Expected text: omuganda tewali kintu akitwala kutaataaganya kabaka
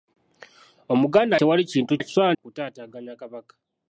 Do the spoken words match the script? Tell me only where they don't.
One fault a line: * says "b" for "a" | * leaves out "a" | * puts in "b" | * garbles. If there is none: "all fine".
all fine